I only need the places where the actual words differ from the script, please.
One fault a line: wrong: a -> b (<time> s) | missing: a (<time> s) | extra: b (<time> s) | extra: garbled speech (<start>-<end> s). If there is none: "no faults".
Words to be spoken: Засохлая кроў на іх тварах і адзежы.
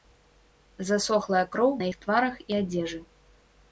no faults